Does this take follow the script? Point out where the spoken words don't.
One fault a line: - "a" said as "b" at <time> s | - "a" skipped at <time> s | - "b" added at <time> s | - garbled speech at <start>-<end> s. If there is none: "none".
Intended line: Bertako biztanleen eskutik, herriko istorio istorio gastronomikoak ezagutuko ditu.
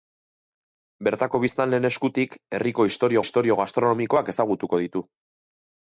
none